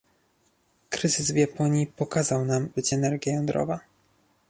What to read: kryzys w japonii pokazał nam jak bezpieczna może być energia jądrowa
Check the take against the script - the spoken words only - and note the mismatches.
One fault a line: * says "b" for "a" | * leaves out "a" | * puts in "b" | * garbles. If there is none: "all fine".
* leaves out "jak bezpieczna może"